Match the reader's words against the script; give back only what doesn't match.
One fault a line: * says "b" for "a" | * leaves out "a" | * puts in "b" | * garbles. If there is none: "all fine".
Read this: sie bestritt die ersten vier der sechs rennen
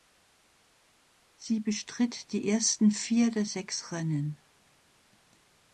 all fine